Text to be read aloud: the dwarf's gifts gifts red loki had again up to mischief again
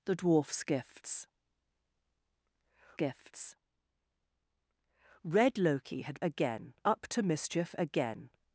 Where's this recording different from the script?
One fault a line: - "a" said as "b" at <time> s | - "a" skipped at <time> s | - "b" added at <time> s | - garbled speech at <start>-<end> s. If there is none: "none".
none